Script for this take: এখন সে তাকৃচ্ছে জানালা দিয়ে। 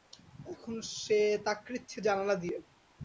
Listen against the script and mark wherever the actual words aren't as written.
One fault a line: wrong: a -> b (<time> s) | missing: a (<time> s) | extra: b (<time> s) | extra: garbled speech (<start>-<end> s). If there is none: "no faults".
no faults